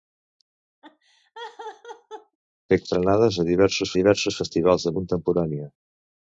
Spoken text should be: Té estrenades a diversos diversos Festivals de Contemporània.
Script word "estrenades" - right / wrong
right